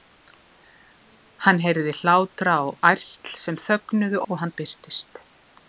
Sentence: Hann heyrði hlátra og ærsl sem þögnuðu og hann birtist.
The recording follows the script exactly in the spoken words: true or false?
true